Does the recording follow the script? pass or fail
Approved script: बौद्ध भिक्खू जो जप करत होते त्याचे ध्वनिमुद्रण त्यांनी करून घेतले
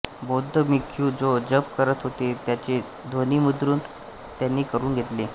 pass